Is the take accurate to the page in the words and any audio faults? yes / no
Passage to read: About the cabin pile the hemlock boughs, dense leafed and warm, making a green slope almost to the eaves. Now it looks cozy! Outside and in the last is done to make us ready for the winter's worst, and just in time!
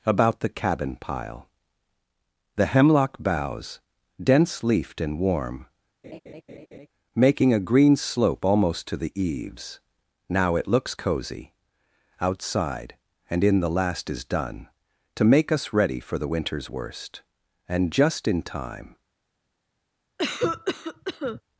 no